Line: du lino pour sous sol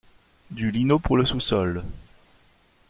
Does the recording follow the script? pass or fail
fail